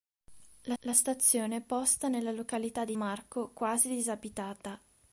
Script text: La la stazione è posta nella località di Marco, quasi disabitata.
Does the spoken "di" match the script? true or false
true